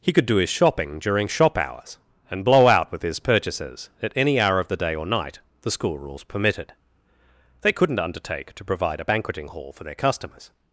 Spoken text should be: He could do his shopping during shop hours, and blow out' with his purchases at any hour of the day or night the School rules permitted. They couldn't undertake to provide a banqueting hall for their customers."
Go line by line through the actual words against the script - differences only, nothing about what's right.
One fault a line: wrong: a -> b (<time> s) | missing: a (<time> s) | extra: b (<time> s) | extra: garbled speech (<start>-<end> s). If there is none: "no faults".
no faults